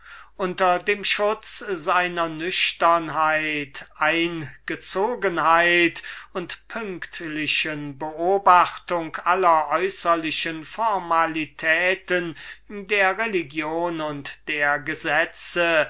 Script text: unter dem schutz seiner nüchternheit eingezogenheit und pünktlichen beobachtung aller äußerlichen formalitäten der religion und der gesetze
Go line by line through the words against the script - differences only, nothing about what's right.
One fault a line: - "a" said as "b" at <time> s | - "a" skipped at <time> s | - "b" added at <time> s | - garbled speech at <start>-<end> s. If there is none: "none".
none